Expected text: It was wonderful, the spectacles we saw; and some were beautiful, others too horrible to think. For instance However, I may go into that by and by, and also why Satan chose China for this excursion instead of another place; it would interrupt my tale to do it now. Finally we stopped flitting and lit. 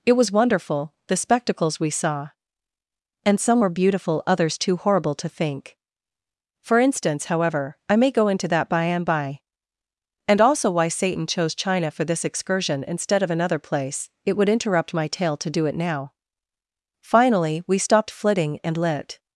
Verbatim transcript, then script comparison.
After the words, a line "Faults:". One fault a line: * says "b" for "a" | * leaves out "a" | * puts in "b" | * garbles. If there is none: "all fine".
It was wonderful, the spectacles we saw; and some were beautiful, others too horrible to think. For instance However, I may go into that by and by, and also why Satan chose China for this excursion instead of another place; it would interrupt my tale to do it now. Finally we stopped flitting and lit.
Faults:
all fine